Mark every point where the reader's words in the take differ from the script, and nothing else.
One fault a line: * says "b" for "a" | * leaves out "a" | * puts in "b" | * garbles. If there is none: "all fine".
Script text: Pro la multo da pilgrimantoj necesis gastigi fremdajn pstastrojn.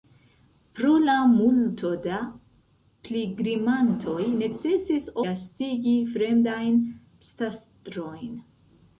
all fine